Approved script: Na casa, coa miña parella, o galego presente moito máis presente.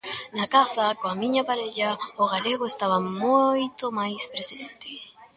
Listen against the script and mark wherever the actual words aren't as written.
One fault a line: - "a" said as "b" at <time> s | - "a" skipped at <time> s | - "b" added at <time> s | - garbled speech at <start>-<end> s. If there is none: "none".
- "presente" said as "estaba" at 2.7 s